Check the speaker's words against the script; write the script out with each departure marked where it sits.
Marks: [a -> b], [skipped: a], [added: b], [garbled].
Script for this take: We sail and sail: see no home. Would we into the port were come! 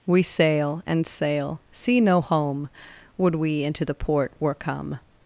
We sail and sail: see no home. Would we into the port were come!